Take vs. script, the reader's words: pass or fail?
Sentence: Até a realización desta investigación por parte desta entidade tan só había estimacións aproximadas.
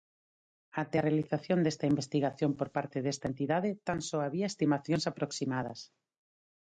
pass